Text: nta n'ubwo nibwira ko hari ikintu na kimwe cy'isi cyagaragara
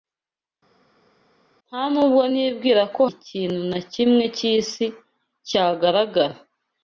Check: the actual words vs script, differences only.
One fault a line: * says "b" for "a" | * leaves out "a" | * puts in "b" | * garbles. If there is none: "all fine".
* leaves out "hari"